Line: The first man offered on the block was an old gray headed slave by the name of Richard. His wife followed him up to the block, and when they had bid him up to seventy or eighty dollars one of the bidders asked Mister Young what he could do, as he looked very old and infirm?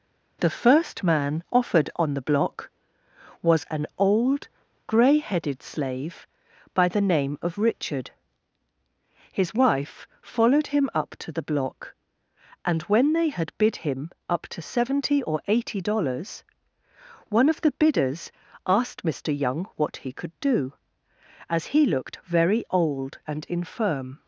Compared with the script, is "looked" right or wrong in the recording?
right